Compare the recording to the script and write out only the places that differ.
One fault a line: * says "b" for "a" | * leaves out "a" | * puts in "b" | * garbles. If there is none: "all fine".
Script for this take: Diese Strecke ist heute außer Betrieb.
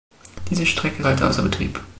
* leaves out "ist"